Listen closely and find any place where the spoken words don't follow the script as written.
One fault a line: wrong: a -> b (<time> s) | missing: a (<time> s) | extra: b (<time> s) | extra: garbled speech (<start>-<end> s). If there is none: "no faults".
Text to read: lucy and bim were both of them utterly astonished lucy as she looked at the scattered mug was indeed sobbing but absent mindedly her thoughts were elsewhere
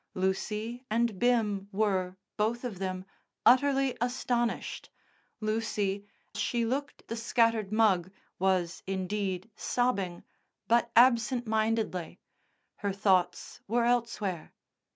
missing: as (6.1 s)
missing: at (7.0 s)